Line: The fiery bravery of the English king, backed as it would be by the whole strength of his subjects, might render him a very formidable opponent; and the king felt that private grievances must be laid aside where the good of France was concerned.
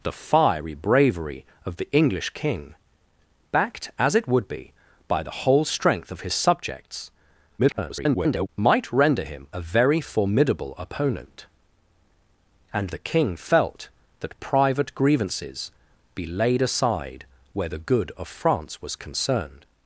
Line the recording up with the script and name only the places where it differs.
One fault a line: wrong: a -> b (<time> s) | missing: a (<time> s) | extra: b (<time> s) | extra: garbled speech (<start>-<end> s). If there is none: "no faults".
extra: garbled speech (7.6-8.5 s)
missing: must (15.7 s)